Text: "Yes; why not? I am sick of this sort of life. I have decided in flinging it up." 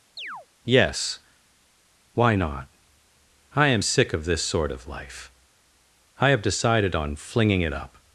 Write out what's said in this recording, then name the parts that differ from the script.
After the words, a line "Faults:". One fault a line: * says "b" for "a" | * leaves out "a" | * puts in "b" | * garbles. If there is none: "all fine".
"Yes; why not? I am sick of this sort of life. I have decided on flinging it up."
Faults:
* says "on" for "in"